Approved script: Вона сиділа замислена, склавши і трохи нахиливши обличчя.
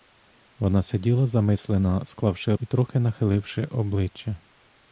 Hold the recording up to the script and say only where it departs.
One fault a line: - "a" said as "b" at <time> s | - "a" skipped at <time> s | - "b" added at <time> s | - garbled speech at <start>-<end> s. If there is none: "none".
none